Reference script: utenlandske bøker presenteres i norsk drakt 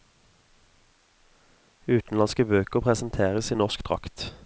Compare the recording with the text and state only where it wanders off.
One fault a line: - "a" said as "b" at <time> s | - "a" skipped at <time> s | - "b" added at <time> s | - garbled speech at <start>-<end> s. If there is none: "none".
none